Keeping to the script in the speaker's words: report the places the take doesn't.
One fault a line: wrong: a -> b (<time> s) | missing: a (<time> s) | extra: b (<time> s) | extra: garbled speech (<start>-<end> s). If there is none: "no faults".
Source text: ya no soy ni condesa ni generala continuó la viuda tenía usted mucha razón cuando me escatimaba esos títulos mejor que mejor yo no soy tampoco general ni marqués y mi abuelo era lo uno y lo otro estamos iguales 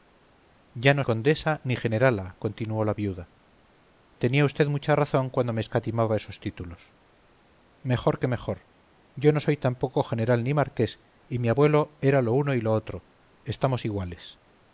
missing: soy ni (1.0 s)